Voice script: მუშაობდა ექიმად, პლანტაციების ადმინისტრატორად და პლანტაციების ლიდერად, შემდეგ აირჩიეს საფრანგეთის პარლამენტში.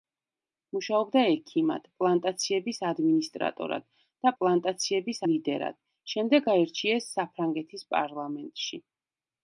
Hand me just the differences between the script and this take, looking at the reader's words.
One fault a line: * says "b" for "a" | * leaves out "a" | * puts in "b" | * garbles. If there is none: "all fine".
all fine